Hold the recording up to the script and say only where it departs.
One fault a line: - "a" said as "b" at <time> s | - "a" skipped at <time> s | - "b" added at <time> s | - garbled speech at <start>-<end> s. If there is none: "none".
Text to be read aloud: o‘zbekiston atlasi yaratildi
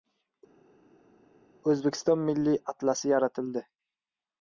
- "milliy" added at 2.3 s